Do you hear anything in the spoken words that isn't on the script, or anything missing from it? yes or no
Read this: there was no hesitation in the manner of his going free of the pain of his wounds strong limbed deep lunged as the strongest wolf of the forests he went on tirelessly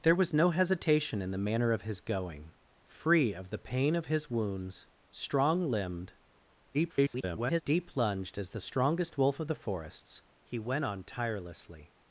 yes